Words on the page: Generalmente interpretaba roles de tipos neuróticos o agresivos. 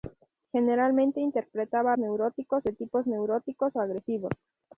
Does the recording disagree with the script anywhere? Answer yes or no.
yes